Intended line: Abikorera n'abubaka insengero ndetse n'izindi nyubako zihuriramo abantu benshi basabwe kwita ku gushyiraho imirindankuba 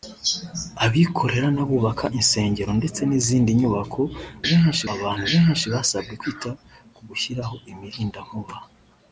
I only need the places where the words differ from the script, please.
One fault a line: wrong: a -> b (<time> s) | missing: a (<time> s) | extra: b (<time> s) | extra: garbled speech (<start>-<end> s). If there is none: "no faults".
wrong: zihuriramo -> benshi (4.5 s)